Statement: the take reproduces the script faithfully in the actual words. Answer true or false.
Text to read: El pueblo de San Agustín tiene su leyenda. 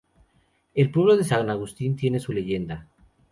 true